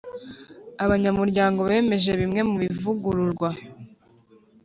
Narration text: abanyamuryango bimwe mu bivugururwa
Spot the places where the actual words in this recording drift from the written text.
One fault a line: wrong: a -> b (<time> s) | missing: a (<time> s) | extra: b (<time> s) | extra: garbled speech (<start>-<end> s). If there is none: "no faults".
extra: bemeje (1.7 s)